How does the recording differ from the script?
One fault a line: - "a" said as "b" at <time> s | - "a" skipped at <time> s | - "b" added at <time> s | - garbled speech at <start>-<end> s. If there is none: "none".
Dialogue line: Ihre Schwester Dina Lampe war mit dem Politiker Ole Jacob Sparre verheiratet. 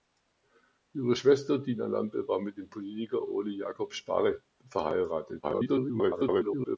- garbled speech at 5.4-6.8 s